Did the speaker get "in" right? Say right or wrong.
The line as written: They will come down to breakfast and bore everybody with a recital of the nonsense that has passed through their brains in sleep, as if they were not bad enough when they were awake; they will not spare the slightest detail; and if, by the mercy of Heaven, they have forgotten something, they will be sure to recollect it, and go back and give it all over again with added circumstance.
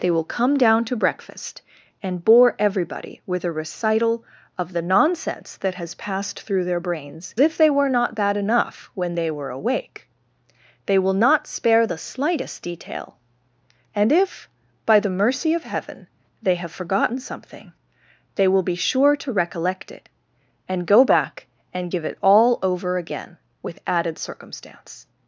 wrong